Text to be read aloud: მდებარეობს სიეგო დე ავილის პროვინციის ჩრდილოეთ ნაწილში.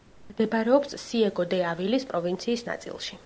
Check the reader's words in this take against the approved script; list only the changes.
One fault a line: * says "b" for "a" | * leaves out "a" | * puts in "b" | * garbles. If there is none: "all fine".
* leaves out "ჩრდილოეთ"